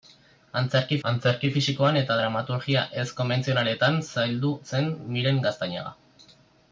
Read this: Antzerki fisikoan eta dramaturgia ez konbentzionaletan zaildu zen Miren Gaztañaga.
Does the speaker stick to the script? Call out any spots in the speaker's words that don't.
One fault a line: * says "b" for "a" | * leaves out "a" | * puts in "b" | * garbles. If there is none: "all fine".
* puts in "antzerki"